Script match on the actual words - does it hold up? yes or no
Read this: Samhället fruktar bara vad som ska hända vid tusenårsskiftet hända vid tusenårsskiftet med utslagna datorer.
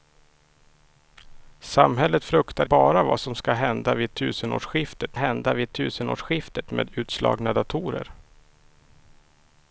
yes